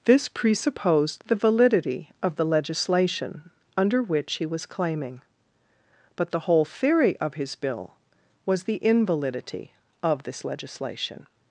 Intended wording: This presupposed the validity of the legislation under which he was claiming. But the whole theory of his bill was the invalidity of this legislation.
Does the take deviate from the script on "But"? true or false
false